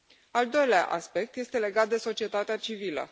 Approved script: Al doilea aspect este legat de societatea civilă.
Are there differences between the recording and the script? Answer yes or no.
no